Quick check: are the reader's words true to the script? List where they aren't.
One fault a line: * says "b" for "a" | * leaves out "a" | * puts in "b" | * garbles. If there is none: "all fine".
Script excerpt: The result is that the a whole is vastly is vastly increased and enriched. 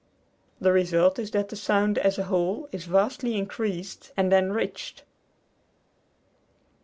* puts in "sound as"
* leaves out "is vastly"